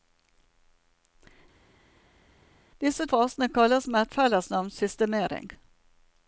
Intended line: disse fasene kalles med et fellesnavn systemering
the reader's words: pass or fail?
pass